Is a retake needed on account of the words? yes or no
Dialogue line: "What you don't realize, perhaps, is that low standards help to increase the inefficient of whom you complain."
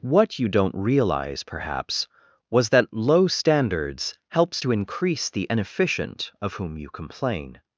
yes